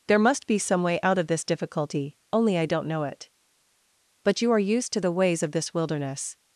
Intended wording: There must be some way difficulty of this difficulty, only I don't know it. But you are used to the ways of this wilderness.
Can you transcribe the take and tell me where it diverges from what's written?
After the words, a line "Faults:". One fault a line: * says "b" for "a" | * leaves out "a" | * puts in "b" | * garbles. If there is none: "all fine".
There must be some way out of this difficulty, only I don't know it. But you are used to the ways of this wilderness.
Faults:
* says "out" for "difficulty"